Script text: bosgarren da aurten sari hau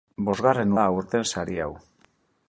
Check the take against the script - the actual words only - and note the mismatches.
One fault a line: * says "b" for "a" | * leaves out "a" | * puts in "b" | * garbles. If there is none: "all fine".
all fine